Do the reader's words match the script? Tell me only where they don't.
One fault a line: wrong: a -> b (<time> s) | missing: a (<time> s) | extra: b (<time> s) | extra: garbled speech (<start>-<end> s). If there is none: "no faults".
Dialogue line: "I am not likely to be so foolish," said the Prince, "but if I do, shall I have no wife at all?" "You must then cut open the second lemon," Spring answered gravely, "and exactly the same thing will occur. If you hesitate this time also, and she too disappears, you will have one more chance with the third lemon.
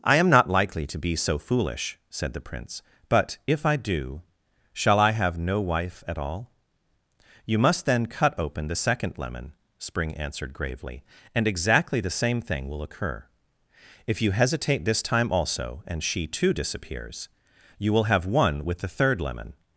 missing: more chance (18.7 s)